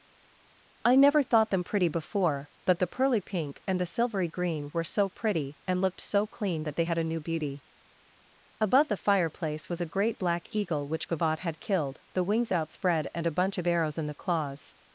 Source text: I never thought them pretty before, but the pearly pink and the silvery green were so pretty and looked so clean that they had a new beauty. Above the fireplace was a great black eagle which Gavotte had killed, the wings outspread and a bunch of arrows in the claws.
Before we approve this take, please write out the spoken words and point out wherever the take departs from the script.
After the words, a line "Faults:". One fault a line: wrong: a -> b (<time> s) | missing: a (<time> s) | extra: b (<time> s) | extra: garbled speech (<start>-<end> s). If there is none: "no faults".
I never thought them pretty before, but the pearly pink and the silvery green were so pretty and looked so clean that they had a new beauty. Above the fireplace was a great black eagle which Gavotte had killed, the wings outspread and a bunch of arrows in the claws.
Faults:
no faults